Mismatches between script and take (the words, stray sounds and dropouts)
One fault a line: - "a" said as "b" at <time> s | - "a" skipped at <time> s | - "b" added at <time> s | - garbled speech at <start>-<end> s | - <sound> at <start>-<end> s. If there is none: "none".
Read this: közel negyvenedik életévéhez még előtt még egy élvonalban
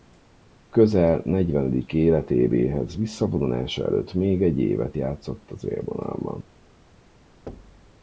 - "még" said as "visszavonulása" at 2.9 s
- "évet játszott az" added at 4.6 s
- thud at 7.5-7.9 s